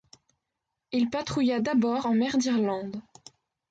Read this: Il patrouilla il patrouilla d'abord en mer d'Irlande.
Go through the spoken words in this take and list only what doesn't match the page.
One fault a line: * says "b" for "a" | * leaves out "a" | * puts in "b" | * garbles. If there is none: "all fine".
* leaves out "il patrouilla"